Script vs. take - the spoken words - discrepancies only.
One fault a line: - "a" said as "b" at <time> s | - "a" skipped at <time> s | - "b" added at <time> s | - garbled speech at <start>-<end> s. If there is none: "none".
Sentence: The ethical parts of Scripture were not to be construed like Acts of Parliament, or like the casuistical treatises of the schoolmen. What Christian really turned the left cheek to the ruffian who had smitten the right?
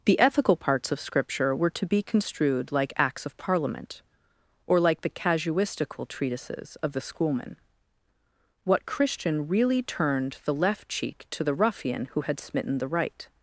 - "not" skipped at 1.7 s